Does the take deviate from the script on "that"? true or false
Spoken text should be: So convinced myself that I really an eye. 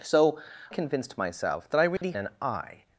false